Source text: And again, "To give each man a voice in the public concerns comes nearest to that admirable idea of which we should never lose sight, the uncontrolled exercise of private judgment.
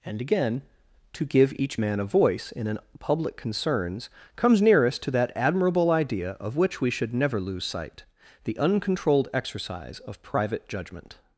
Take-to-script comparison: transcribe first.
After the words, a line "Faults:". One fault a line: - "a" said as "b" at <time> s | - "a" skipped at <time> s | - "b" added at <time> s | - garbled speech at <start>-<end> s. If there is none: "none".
And again, "To give each man a voice in an public concerns comes nearest to that admirable idea of which we should never lose sight, the uncontrolled exercise of private judgment.
Faults:
- "the" said as "an" at 2.7 s